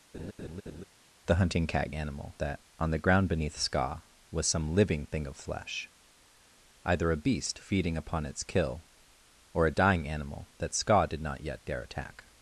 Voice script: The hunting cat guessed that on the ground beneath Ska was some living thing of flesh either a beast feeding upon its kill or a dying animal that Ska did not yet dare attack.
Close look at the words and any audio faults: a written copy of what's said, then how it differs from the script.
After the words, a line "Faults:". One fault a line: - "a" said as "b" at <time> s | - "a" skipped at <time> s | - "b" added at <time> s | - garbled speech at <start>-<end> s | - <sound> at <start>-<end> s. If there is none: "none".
The hunting cat animal that on the ground beneath Ska was some living thing of flesh either a beast feeding upon its kill or a dying animal that Ska did not yet dare attack.
Faults:
- laugh at 0.1-0.8 s
- "guessed" said as "animal" at 1.9 s